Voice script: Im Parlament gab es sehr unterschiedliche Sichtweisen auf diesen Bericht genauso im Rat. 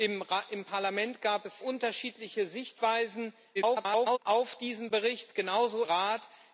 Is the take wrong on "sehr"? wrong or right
wrong